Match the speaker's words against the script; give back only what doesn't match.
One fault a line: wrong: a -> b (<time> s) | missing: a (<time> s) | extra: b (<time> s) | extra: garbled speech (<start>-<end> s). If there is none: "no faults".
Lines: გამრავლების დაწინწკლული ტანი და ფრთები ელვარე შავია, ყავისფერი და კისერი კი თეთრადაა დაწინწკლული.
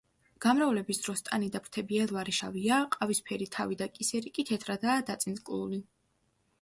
wrong: დაწინწკლული -> დროს (1.1 s)
extra: თავი (3.6 s)